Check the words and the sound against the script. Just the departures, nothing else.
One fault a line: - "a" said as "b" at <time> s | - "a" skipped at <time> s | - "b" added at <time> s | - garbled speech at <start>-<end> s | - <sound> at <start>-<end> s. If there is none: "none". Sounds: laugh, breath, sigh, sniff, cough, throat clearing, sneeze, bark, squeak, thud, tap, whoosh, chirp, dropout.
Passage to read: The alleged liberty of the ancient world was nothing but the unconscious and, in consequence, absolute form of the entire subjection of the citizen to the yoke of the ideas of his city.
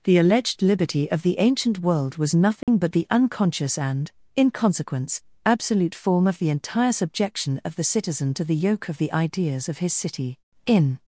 - dropout at 2.6-2.7 s
- "In" added at 10.7 s